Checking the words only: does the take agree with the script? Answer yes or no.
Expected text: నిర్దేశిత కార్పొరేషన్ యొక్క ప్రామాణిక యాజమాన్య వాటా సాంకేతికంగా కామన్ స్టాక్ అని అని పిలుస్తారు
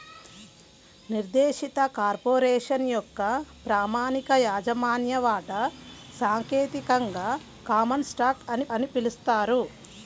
yes